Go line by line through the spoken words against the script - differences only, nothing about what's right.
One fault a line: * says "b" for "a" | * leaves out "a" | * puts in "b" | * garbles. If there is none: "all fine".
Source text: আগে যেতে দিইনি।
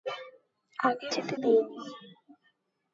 all fine